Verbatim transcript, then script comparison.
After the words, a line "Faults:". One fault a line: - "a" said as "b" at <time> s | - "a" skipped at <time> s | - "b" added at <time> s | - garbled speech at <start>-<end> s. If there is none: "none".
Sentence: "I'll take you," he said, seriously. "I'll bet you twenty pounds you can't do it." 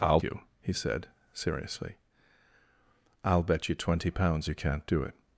"I'll you," he said, seriously. "I'll bet you twenty pounds you can't do it."
Faults:
- "take" skipped at 0.2 s